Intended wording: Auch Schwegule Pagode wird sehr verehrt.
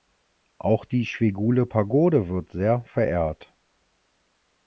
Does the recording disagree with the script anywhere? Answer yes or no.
yes